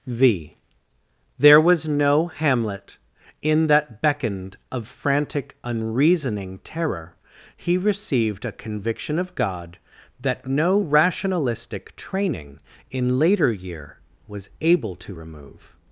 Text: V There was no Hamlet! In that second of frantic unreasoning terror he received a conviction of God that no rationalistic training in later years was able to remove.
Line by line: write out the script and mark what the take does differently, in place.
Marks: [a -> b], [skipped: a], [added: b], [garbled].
V There was no Hamlet! In that [second -> beckoned] of frantic unreasoning terror he received a conviction of God that no rationalistic training in later [years -> year] was able to remove.